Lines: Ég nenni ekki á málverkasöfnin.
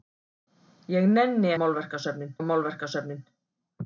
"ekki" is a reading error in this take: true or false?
true